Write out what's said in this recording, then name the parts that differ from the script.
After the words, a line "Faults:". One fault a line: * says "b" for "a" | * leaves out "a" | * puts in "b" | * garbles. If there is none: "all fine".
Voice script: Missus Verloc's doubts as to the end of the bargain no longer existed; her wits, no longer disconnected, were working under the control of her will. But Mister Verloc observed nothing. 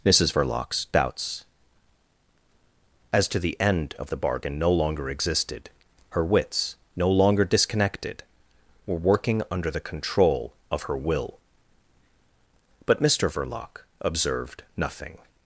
Missus Verloc's doubts as to the end of the bargain no longer existed; her wits, no longer disconnected, were working under the control of her will. But Mister Verloc observed nothing.
Faults:
all fine